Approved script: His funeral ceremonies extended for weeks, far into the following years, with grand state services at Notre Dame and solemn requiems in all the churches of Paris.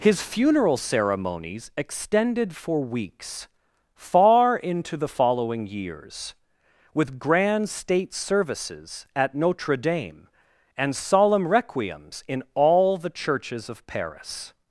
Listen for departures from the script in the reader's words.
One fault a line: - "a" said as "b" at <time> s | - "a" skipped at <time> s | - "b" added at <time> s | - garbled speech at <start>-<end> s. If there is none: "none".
none